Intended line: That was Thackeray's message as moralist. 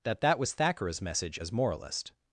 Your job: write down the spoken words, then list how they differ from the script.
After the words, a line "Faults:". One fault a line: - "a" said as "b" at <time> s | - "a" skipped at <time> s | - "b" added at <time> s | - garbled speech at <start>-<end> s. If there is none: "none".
That that was Thackeray's message as moralist.
Faults:
- "that" added at 0.2 s